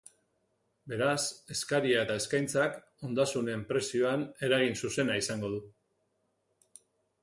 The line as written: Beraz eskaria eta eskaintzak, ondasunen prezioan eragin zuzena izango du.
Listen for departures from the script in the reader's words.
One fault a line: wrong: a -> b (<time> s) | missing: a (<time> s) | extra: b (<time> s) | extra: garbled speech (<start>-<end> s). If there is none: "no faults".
no faults